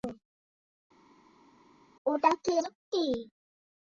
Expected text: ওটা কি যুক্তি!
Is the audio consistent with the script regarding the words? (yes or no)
yes